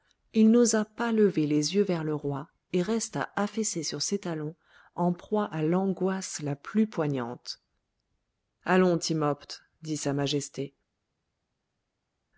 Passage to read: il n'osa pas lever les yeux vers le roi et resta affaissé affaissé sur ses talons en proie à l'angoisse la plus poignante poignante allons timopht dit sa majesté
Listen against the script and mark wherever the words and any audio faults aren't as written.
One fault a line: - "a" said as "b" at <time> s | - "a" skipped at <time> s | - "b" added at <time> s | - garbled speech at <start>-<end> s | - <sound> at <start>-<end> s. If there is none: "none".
- "affaissé" skipped at 3.8 s
- "poignante" skipped at 7.6 s